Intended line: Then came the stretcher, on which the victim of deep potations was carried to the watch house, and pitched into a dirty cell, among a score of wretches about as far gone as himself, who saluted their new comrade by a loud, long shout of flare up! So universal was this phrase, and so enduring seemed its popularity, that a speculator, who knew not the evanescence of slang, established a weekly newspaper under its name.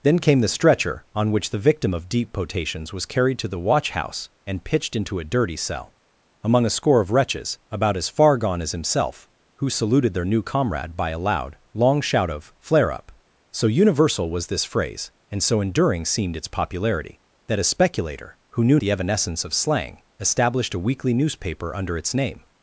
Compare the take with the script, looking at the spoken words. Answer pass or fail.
fail